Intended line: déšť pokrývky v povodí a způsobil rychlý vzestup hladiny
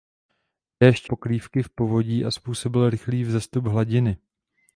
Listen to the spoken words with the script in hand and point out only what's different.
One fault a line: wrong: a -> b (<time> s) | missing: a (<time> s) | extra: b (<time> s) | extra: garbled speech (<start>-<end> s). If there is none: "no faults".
no faults